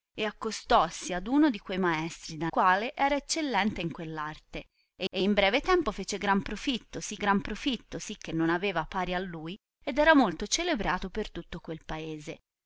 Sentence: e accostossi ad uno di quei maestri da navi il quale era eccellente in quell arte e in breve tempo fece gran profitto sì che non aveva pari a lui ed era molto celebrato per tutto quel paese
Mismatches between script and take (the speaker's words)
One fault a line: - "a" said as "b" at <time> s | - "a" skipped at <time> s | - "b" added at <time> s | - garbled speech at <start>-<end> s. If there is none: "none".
- "navi il" skipped at 2.5 s
- "e" added at 5.1 s
- "gran profitto sì" added at 7.2 s